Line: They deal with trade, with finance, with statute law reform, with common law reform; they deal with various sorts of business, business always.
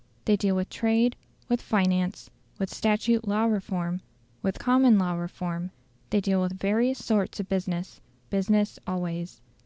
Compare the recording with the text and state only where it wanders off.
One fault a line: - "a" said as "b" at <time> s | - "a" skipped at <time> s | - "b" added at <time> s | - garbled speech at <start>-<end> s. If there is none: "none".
none